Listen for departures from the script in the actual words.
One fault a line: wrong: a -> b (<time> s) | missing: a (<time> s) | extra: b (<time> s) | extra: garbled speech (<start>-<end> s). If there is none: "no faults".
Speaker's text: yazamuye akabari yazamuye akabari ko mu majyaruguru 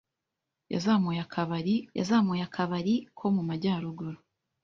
no faults